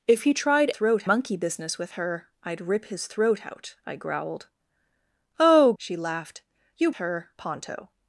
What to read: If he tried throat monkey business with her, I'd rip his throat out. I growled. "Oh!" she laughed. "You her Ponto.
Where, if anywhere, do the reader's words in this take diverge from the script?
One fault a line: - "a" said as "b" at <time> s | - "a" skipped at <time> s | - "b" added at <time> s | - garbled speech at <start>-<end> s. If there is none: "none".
none